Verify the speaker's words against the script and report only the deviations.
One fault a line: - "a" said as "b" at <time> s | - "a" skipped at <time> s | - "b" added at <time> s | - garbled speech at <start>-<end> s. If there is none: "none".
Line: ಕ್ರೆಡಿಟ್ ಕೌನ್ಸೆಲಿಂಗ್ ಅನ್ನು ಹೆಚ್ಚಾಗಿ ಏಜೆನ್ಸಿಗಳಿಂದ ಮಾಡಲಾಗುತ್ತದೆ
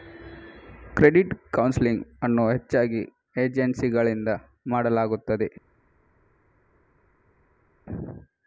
none